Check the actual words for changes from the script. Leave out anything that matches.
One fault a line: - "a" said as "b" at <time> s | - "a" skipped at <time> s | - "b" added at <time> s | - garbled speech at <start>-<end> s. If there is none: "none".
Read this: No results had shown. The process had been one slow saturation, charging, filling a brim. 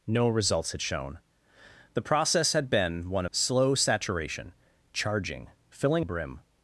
none